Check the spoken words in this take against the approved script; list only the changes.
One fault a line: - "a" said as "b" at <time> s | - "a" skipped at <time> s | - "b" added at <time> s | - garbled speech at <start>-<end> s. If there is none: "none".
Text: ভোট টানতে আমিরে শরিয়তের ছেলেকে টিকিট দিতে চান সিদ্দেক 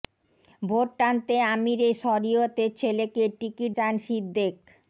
- "দিতে" skipped at 3.7 s